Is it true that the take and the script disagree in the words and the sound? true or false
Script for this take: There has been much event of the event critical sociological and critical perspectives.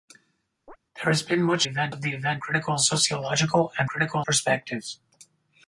true